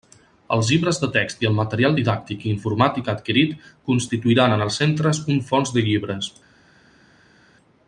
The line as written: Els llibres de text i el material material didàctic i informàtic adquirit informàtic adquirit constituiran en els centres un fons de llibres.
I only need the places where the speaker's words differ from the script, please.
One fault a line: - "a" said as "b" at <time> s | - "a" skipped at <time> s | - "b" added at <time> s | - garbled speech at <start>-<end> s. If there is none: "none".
- "material" skipped at 2.0 s
- "informàtic adquirit" skipped at 3.6 s